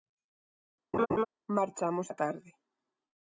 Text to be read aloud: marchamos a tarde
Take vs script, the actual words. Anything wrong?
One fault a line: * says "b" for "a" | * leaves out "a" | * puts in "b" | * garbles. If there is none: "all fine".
all fine